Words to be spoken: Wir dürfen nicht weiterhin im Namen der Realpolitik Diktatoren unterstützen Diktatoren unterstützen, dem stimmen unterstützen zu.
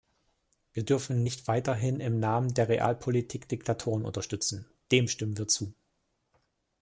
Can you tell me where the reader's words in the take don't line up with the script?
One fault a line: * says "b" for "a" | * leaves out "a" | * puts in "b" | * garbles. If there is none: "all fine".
* leaves out "Diktatoren unterstützen"
* says "wir" for "unterstützen"